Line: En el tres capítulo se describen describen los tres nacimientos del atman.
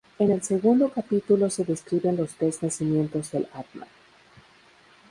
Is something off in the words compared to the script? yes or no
yes